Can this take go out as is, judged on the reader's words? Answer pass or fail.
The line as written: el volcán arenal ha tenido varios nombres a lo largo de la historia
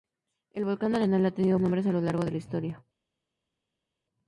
fail